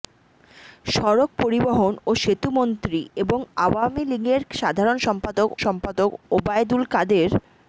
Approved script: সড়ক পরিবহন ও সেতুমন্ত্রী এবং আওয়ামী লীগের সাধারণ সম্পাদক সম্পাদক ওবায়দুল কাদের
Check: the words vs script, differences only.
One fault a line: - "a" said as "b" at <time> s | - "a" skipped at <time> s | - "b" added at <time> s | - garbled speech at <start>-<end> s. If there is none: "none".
none